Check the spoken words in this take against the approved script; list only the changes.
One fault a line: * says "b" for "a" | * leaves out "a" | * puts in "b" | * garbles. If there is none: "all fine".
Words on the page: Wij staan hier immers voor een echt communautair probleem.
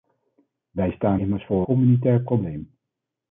* leaves out "hier"
* leaves out "een echt"